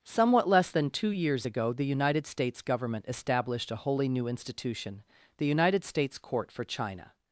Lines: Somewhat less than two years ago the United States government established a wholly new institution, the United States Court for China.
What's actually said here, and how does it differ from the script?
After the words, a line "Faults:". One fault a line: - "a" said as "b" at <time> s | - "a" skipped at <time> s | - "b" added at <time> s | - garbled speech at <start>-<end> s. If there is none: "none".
Somewhat less than two years ago the United States government established a wholly new institution, the United States Court for China.
Faults:
none